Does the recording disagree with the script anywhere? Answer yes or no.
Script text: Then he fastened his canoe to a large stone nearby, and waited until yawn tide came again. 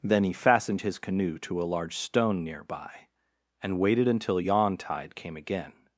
no